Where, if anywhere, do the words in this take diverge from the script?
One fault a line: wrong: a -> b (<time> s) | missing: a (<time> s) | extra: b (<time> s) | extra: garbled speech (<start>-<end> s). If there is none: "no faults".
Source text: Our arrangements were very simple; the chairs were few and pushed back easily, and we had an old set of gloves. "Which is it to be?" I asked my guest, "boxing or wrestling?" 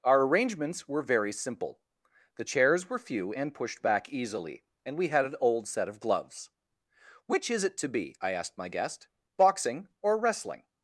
no faults